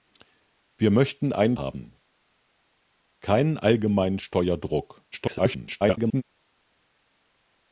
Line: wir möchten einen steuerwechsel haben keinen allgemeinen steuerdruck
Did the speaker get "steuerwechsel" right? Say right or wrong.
wrong